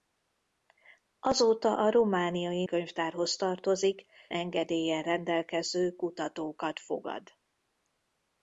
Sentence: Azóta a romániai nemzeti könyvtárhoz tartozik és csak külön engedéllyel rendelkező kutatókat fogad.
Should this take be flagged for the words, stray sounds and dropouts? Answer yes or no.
yes